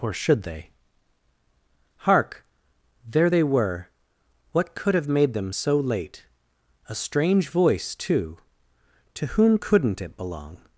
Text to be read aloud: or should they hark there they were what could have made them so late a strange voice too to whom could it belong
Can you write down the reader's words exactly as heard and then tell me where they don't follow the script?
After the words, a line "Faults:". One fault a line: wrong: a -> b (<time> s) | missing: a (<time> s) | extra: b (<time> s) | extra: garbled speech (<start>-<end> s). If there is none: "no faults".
or should they hark there they were what could have made them so late a strange voice too to whom couldn't it belong
Faults:
wrong: could -> couldn't (9.5 s)